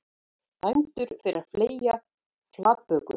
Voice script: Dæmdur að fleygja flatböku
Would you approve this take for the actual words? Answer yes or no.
no